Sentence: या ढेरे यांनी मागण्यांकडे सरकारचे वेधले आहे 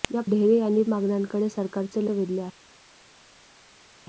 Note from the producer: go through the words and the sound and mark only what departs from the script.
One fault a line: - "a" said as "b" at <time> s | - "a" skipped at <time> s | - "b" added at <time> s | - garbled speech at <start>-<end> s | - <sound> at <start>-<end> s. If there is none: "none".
none